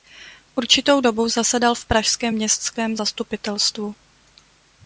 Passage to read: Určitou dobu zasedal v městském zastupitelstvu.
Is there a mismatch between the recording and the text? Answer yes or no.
yes